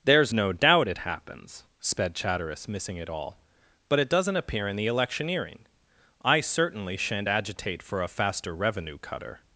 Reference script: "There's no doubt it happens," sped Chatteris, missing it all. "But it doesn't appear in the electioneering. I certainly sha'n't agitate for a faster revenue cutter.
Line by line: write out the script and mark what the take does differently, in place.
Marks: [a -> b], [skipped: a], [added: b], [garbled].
"There's no doubt it happens," sped Chatteris, missing it all. "But it doesn't appear in the electioneering. I certainly sha'n't agitate for a faster revenue cutter.